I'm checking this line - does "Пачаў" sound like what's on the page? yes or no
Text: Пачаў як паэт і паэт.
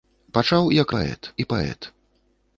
yes